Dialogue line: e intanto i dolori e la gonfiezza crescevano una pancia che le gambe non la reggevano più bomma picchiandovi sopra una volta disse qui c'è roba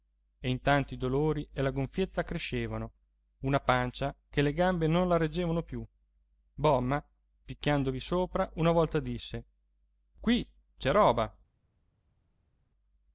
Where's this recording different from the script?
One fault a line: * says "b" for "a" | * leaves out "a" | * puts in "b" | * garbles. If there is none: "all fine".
all fine